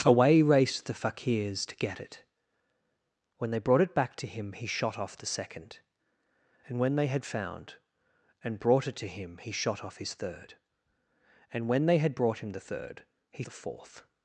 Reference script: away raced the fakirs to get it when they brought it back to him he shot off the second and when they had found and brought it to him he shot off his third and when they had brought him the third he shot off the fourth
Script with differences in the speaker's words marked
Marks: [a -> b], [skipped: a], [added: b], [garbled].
away raced the fakirs to get it when they brought it back to him he shot off the second and when they had found and brought it to him he shot off his third and when they had brought him the third he [skipped: shot off] the fourth